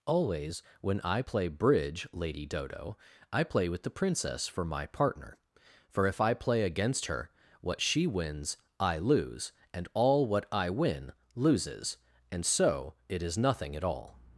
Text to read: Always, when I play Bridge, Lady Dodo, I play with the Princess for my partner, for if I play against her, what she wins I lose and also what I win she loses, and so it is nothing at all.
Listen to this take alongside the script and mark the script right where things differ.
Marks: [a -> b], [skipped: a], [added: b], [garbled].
Always, when I play Bridge, Lady Dodo, I play with the Princess for my partner, for if I play against her, what she wins I lose and [also -> all] what I win [skipped: she] loses, and so it is nothing at all.